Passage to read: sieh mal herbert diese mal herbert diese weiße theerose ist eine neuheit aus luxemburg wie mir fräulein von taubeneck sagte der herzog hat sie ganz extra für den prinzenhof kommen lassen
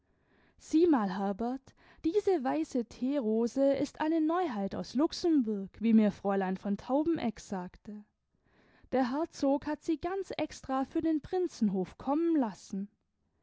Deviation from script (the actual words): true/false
true